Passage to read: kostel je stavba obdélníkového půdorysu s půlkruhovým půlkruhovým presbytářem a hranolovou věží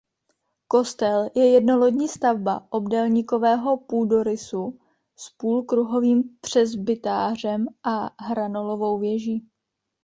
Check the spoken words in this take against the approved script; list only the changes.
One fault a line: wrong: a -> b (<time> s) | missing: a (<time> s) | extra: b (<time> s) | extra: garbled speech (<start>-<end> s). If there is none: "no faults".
extra: jednolodní (1.5 s)
missing: půlkruhovým (6.2 s)